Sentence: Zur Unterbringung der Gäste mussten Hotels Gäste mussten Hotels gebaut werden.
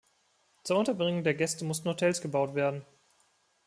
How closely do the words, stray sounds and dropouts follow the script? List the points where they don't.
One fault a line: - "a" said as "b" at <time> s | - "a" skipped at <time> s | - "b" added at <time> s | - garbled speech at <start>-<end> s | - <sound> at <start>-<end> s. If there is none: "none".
- "Gäste mussten Hotels" skipped at 2.2 s